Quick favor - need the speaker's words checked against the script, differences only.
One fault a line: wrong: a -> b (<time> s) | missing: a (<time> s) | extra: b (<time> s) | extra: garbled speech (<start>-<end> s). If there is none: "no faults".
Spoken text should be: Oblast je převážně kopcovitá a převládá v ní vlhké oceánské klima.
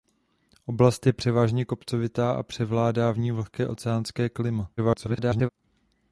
extra: garbled speech (4.8-5.5 s)